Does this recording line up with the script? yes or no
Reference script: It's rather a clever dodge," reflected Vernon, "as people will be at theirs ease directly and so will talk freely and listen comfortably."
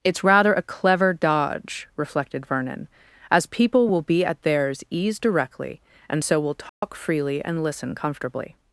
yes